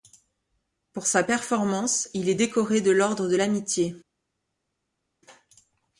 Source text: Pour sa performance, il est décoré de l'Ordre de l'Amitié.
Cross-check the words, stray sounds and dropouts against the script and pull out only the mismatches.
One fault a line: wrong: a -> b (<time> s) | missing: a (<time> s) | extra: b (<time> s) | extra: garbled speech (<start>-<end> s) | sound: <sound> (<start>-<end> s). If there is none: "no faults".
no faults